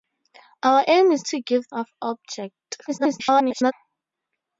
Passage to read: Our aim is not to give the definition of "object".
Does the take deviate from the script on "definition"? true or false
true